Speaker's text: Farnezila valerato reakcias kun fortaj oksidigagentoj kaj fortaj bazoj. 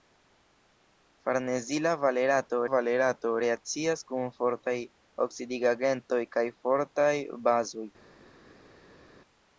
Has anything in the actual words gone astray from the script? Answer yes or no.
yes